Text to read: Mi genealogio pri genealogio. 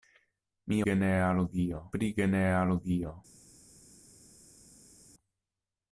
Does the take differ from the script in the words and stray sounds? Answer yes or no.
no